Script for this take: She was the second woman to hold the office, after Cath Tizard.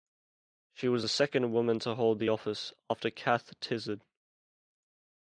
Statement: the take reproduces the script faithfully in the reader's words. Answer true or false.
true